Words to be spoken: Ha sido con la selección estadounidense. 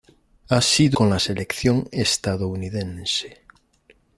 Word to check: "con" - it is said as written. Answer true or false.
true